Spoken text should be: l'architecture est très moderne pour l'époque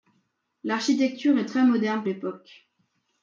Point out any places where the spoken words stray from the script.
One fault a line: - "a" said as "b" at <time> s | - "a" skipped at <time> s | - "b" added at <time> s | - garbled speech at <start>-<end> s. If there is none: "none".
- "pour" skipped at 2.0 s